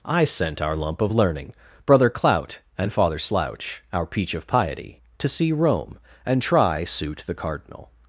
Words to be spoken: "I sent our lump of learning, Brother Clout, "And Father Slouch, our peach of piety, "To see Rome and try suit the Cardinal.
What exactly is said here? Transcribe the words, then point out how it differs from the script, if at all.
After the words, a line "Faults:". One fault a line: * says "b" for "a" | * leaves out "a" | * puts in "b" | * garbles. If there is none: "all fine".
"I sent our lump of learning, Brother Clout, "And Father Slouch, our peach of piety, "To see Rome and try suit the Cardinal.
Faults:
all fine